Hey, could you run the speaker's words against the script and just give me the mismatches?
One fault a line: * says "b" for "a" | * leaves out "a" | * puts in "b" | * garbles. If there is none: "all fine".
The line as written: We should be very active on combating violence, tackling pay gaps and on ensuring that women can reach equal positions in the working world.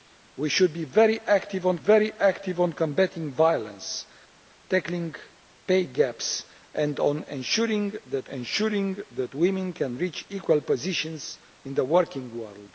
* puts in "very active on"
* puts in "ensuring that"